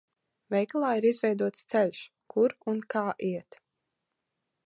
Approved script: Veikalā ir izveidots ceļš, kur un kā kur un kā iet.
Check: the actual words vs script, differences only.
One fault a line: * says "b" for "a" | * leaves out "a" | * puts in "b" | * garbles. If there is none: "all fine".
* leaves out "kur un kā"